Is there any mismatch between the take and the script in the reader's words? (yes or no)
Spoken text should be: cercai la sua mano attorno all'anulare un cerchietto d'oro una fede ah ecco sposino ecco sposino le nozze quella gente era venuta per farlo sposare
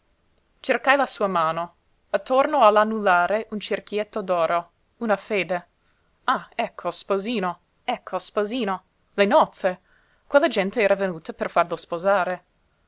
no